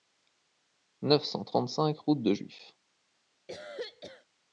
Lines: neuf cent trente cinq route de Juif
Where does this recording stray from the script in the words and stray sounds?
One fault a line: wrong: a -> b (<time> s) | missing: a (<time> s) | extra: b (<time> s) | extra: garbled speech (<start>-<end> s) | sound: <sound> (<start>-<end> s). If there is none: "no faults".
sound: cough (3.5-4.3 s)